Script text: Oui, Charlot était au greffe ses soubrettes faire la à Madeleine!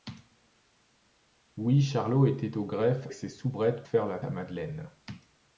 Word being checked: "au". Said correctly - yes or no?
yes